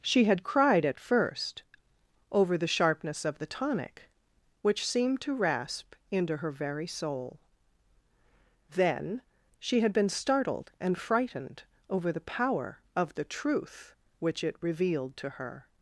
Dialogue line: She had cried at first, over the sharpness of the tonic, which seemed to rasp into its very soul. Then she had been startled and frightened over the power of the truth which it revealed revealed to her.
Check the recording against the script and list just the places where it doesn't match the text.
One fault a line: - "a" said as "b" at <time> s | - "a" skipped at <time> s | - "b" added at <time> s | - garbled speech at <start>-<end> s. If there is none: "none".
- "its" said as "her" at 6.4 s
- "revealed" skipped at 15.2 s